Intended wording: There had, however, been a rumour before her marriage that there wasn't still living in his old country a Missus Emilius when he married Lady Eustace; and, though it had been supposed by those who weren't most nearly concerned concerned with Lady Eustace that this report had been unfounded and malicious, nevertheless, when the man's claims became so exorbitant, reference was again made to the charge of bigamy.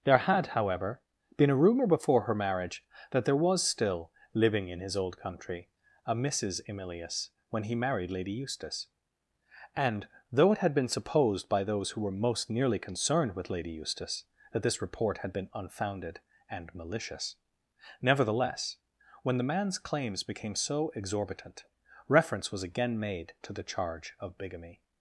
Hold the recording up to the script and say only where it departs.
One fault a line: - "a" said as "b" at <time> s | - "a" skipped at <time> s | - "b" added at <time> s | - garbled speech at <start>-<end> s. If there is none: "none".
- "wasn't" said as "was" at 3.4 s
- "weren't" said as "were" at 12.0 s
- "concerned" skipped at 13.4 s